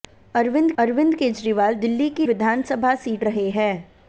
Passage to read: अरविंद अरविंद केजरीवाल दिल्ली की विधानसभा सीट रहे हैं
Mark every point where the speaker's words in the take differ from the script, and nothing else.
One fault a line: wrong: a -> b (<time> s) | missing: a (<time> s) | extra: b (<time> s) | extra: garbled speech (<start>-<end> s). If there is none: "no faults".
no faults